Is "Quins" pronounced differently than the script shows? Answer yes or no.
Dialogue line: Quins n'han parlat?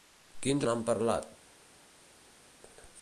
no